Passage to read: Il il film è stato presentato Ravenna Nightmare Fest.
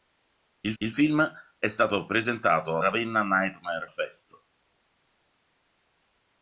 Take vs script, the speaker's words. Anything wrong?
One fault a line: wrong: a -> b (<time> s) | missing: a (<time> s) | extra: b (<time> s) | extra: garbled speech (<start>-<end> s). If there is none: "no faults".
no faults